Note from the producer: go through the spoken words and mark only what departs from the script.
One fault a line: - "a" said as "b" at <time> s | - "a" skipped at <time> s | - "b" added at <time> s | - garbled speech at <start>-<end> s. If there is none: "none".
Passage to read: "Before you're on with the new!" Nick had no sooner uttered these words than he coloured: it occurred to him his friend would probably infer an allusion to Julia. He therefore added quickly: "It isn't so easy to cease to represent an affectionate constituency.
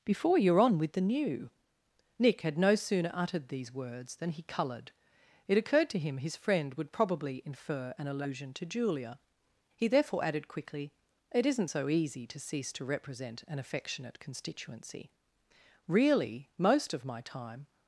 - "Really most of my time" added at 15.9 s